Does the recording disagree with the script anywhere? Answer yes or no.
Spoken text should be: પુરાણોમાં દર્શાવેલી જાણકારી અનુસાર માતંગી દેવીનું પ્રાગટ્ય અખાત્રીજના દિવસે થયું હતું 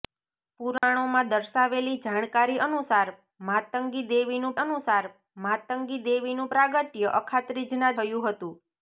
yes